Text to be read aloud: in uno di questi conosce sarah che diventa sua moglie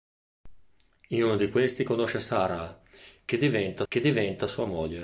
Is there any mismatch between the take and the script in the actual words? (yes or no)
yes